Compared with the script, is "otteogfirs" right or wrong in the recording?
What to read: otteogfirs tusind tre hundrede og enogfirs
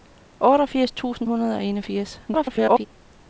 right